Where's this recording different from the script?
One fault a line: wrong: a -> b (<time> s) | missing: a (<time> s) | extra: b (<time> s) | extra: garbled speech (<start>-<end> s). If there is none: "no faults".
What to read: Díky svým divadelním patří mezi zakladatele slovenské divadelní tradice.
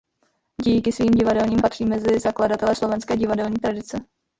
no faults